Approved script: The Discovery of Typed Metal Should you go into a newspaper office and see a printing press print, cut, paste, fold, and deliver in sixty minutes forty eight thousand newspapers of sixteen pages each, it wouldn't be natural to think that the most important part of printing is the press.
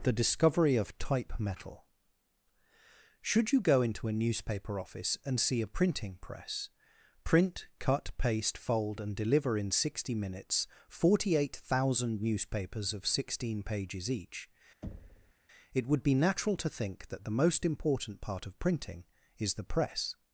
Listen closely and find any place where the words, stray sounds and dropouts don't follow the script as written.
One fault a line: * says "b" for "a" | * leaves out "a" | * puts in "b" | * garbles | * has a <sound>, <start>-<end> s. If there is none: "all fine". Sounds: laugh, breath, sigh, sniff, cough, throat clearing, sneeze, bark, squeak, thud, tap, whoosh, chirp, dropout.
* says "Type" for "Typed"
* has a thud, 14.8-15.3 s
* says "would" for "wouldn't"